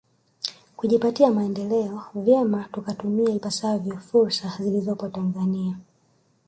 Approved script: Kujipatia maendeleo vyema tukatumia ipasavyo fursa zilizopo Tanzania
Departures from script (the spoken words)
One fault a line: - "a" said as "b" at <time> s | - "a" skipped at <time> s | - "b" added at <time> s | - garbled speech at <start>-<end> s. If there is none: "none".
none